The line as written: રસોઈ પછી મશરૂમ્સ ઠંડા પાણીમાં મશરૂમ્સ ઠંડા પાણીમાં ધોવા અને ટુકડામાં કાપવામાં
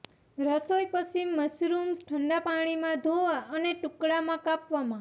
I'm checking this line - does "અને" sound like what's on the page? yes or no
yes